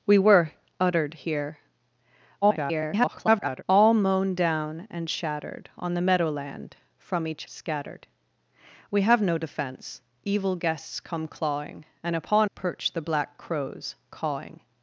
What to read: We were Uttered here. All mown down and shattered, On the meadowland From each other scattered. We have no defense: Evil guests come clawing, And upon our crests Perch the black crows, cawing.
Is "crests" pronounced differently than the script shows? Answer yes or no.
yes